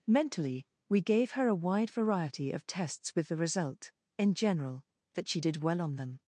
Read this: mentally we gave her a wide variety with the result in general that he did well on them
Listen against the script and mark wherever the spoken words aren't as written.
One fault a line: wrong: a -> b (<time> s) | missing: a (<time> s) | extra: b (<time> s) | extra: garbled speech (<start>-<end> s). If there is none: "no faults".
extra: of tests (2.5 s)
wrong: he -> she (5.3 s)